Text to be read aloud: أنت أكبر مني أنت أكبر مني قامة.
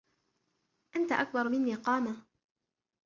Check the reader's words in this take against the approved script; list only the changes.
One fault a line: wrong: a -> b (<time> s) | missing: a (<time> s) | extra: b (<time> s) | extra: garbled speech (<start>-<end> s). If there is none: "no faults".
missing: أنت أكبر مني (1.7 s)